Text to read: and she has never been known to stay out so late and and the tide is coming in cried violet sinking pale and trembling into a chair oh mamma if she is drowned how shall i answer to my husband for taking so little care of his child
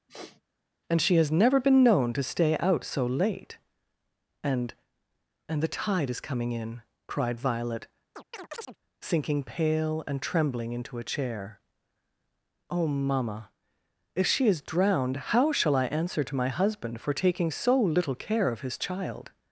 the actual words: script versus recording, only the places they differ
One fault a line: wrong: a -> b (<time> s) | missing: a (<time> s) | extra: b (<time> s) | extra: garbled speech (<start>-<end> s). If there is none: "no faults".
no faults